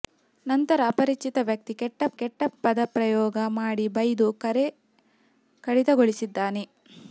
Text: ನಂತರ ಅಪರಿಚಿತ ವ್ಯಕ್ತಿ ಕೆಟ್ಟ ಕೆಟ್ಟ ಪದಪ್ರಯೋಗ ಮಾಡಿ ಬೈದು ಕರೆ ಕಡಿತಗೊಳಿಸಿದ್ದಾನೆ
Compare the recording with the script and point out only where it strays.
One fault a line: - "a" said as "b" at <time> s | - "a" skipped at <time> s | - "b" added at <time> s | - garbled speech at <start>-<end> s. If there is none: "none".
none